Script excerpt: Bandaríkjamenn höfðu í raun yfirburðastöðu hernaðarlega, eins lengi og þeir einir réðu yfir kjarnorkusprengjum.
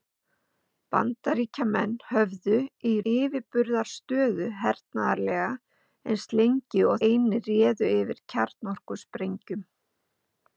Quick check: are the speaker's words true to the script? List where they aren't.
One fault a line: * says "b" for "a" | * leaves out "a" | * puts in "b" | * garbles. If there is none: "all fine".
* leaves out "raun"
* leaves out "þeir"